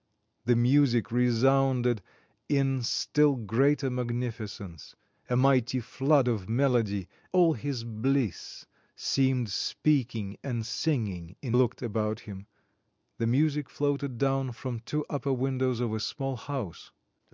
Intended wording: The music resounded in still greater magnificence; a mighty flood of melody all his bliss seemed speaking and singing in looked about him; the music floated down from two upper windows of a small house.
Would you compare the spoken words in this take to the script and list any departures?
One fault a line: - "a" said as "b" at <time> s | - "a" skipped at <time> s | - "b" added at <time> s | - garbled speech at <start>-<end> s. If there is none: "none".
none